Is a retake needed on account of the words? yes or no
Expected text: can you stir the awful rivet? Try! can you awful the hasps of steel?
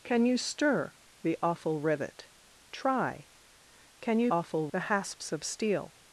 no